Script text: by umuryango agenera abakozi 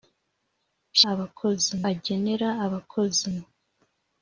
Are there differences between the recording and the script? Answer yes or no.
yes